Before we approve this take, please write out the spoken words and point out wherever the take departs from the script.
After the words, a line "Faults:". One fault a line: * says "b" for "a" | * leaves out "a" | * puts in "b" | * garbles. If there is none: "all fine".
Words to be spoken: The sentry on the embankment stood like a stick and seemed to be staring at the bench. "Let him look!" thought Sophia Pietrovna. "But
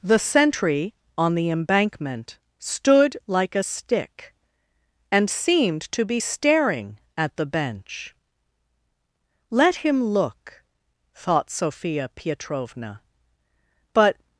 The sentry on the embankment stood like a stick and seemed to be staring at the bench. "Let him look!" thought Sophia Pietrovna. "But
Faults:
all fine